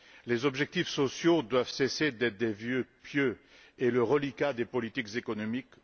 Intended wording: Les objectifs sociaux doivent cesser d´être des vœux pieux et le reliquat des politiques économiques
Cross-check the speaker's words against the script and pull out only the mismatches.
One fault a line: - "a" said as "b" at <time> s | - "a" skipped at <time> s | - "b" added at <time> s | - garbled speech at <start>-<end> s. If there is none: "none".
none